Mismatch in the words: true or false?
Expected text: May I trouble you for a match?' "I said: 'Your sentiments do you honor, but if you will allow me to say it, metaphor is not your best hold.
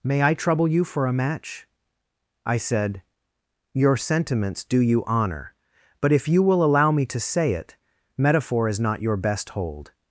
false